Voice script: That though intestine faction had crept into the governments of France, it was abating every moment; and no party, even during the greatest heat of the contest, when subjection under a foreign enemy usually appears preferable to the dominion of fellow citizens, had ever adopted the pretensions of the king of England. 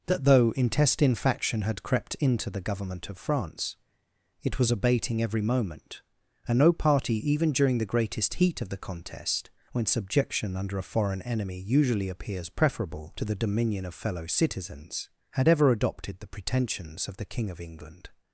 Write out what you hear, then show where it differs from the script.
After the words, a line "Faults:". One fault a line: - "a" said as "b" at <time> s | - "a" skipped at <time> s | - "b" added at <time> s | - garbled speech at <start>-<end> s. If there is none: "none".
That though intestine faction had crept into the government of France, it was abating every moment; and no party, even during the greatest heat of the contest, when subjection under a foreign enemy usually appears preferable to the dominion of fellow citizens, had ever adopted the pretensions of the king of England.
Faults:
- "governments" said as "government" at 2.6 s